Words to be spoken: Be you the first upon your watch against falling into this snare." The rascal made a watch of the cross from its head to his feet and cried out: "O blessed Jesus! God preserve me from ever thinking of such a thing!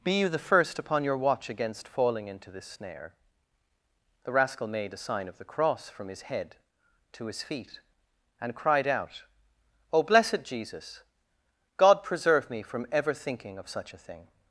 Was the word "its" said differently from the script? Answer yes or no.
yes